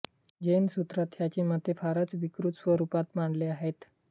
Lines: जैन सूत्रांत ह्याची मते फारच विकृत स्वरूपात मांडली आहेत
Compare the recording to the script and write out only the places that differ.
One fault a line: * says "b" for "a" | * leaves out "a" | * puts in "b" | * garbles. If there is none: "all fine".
all fine